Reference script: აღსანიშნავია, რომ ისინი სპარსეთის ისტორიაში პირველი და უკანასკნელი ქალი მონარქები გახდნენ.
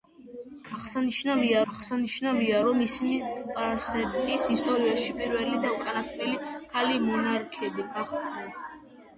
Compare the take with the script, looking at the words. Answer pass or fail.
fail